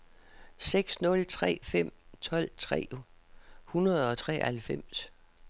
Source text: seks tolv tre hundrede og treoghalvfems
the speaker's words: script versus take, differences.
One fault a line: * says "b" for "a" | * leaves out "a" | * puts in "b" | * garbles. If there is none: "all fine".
* puts in "nul tre fem"